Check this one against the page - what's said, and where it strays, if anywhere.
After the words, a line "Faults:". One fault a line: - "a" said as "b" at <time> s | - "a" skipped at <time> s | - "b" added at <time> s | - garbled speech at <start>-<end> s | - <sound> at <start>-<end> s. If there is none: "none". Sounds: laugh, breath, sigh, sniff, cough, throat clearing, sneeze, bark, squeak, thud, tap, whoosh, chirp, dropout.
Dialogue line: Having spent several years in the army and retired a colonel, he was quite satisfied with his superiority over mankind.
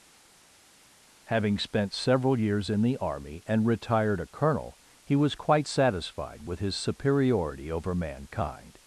Having spent several years in the army and retired a colonel, he was quite satisfied with his superiority over mankind.
Faults:
none